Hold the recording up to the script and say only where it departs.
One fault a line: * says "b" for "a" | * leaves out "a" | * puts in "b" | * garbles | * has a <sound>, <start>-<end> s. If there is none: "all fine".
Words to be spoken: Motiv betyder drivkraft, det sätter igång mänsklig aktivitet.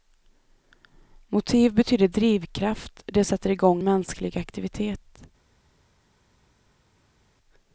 all fine